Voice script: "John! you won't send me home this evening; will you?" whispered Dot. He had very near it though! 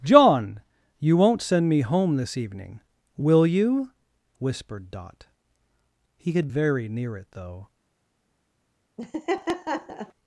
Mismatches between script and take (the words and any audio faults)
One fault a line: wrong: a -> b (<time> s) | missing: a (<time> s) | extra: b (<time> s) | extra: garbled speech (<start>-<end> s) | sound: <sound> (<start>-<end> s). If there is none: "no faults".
sound: laugh (9.0-10.1 s)